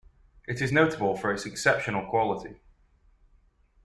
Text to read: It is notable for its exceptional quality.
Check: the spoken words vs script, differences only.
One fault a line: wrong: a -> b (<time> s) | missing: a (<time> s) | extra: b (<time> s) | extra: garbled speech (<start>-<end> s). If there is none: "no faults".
no faults